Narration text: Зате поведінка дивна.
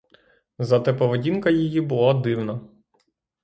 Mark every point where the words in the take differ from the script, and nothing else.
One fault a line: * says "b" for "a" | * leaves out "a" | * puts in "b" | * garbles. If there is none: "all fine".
* puts in "її була"